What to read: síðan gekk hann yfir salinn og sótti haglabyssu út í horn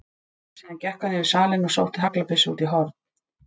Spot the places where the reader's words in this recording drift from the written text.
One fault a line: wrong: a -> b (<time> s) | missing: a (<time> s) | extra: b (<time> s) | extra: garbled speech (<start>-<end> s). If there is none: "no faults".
no faults